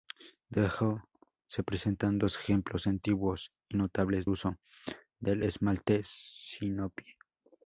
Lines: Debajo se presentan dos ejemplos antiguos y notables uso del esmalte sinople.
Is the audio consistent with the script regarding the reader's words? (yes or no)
yes